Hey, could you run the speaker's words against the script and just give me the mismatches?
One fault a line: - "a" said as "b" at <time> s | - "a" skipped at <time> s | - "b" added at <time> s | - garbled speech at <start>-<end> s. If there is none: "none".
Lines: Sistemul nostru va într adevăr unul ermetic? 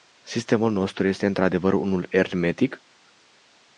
- "va" said as "este" at 1.1 s